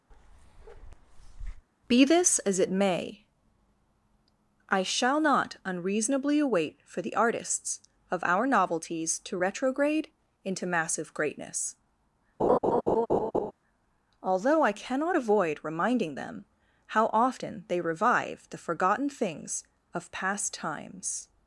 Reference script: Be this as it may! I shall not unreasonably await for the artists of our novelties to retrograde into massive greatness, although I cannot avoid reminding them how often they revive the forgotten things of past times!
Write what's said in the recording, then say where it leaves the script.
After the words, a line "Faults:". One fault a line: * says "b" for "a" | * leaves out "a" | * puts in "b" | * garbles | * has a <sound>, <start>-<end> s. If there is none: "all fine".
Be this as it may! I shall not unreasonably await for the artists of our novelties to retrograde into massive greatness, although I cannot avoid reminding them how often they revive the forgotten things of past times!
Faults:
* has a bark, 0.1-1.7 s
* has a laugh, 12.4-13.5 s